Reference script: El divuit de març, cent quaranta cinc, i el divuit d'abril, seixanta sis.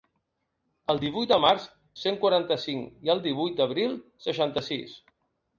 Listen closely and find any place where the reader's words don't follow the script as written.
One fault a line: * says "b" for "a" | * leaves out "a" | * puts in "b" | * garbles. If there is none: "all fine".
all fine